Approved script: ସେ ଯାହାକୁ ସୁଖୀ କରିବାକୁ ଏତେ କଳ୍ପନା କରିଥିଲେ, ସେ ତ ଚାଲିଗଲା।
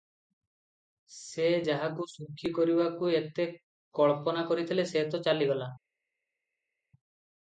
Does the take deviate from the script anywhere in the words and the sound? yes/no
no